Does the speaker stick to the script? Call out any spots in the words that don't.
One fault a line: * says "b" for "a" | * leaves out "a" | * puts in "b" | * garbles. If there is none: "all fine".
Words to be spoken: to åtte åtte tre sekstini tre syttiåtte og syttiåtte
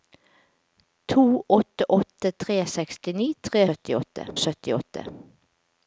all fine